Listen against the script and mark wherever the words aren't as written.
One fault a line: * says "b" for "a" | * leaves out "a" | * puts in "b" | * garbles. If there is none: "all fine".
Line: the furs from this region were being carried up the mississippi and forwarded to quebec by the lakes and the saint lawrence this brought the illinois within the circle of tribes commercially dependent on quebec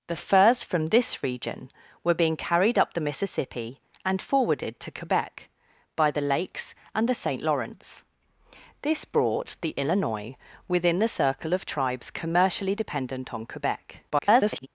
* garbles